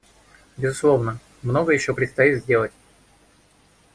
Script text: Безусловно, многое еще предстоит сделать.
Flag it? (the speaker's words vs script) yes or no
no